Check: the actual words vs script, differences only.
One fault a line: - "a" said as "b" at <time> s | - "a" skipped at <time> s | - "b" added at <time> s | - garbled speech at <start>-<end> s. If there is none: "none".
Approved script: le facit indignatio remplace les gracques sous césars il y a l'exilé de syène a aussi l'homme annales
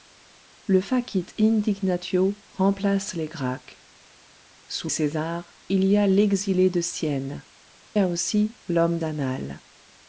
none